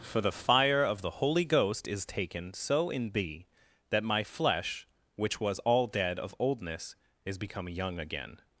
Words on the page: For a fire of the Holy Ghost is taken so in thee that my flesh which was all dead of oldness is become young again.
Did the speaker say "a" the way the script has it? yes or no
no